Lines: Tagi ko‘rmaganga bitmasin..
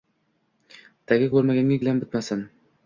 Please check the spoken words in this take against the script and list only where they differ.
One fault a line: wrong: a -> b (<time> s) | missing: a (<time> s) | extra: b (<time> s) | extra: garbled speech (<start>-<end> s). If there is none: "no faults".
extra: gilam (1.8 s)